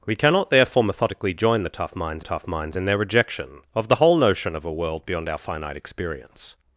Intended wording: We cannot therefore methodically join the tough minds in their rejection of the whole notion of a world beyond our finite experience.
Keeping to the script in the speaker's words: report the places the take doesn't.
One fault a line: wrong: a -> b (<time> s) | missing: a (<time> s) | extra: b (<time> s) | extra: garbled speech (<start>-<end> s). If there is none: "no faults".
extra: tough minds (2.2 s)